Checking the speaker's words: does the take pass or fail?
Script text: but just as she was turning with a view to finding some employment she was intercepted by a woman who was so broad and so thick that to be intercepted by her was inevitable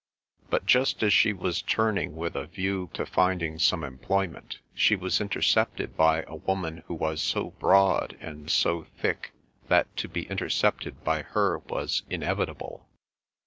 pass